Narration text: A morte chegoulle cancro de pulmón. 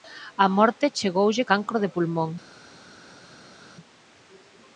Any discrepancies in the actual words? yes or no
no